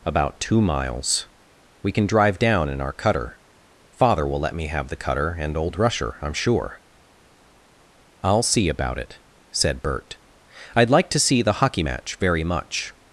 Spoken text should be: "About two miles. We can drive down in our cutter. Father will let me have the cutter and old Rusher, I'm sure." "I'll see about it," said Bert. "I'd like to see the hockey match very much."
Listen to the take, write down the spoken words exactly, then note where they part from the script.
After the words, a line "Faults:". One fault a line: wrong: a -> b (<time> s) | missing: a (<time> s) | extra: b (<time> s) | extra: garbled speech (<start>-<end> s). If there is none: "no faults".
"About two miles. We can drive down in our cutter. Father will let me have the cutter and old Rusher, I'm sure." "I'll see about it," said Bert. "I'd like to see the hockey match very much."
Faults:
no faults